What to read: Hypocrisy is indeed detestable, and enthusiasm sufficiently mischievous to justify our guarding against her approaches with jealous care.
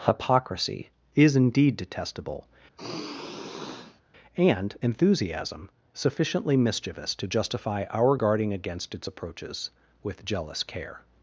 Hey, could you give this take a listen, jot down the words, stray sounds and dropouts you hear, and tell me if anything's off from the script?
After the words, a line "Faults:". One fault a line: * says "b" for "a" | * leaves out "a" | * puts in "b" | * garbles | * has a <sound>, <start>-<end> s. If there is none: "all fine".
Hypocrisy is indeed detestable, and enthusiasm sufficiently mischievous to justify our guarding against its approaches with jealous care.
Faults:
* has a sigh, 2.8-4.0 s
* says "its" for "her"